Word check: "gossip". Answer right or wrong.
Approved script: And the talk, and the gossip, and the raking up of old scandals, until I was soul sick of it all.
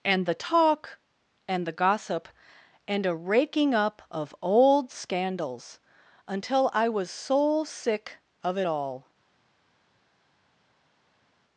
right